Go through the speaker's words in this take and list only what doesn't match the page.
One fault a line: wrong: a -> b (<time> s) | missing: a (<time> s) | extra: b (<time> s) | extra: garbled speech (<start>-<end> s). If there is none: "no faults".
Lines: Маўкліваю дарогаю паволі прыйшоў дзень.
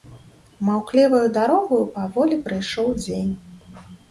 no faults